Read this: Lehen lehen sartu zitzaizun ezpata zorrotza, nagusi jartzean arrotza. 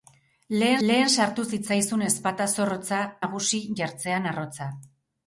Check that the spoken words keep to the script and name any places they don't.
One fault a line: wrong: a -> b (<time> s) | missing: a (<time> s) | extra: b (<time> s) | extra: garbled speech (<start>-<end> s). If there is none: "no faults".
no faults